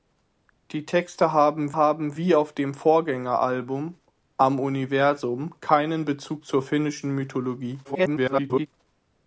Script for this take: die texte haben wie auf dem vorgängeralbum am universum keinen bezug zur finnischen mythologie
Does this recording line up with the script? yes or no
no